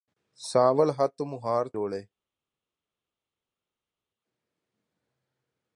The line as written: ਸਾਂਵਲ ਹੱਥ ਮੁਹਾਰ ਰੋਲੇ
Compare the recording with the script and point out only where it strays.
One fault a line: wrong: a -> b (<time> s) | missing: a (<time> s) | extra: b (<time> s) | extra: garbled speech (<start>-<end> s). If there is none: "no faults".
no faults